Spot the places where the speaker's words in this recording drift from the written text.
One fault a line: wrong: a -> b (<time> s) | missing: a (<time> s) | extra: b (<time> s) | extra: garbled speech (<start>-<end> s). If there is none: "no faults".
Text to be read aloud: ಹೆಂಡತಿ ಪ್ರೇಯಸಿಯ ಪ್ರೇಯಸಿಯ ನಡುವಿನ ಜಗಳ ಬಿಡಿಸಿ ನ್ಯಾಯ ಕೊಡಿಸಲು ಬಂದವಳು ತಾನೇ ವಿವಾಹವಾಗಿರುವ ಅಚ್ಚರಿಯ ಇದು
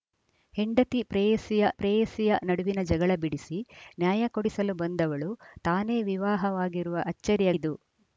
no faults